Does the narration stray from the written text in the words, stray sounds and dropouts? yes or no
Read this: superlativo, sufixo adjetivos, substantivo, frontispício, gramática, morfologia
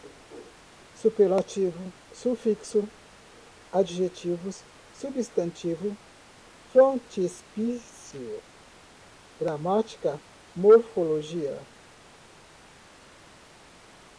no